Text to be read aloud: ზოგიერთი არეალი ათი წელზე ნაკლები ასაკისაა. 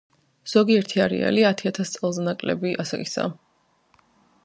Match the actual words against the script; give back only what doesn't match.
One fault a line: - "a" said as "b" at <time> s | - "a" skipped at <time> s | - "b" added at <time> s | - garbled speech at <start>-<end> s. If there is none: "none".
- "ათას" added at 1.7 s